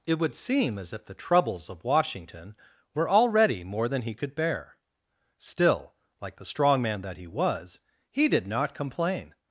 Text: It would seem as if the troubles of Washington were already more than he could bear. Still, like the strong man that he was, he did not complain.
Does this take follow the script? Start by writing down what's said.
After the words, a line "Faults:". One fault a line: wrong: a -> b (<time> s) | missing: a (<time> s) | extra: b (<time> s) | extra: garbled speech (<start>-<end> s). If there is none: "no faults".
It would seem as if the troubles of Washington were already more than he could bear. Still, like the strong man that he was, he did not complain.
Faults:
no faults